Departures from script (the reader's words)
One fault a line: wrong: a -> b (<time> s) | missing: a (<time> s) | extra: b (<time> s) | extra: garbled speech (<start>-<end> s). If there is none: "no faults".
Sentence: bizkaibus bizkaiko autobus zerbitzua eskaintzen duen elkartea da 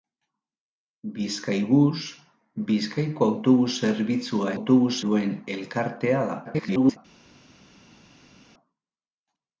wrong: eskaintzen -> autobus (4.6 s)
extra: garbled speech (6.4-7.0 s)